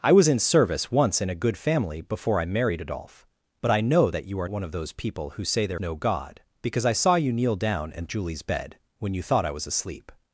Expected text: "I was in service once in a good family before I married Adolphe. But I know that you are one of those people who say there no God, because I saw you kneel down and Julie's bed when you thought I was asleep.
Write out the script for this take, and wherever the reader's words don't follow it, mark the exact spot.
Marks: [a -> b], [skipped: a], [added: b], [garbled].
"I was in service once in a good family before I married Adolphe. But I know that you are one of those people who say there no God, because I saw you kneel down and Julie's bed when you thought I was asleep.